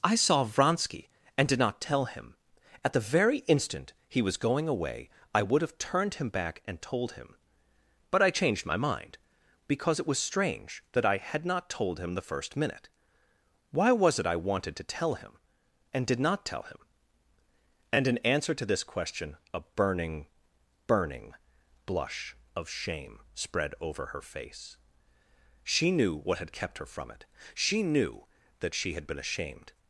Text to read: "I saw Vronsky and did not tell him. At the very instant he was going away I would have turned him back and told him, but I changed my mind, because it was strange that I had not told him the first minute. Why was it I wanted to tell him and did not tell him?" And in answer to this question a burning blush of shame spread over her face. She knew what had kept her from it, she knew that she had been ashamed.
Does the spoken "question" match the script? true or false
true